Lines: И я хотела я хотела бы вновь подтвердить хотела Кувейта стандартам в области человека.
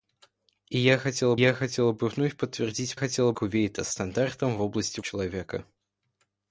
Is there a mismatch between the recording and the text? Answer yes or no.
no